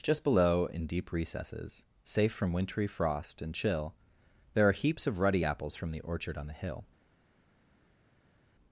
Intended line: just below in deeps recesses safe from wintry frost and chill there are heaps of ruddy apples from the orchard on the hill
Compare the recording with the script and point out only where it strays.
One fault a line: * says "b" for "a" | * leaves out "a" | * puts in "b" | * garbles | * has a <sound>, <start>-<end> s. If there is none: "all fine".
* says "deep" for "deeps"